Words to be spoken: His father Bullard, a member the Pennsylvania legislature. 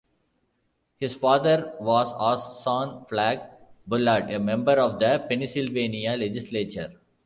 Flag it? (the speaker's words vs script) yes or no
yes